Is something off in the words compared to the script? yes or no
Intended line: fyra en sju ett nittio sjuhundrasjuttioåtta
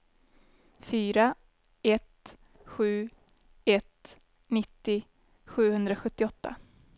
yes